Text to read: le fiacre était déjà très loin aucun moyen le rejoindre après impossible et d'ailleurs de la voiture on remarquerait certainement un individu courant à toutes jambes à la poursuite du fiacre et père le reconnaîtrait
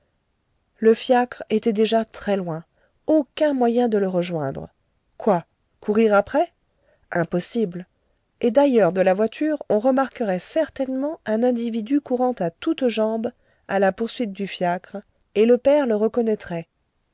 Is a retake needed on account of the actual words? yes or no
yes